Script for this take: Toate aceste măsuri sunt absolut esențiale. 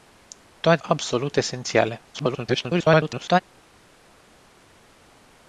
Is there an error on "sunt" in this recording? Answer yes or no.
yes